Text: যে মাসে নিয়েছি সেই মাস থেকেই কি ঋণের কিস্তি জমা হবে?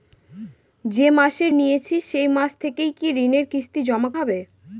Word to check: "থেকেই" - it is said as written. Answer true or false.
true